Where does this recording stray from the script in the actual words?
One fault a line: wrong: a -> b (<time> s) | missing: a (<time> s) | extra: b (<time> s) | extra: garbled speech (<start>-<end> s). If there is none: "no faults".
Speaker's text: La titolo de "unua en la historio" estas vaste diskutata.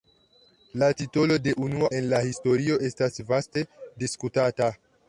no faults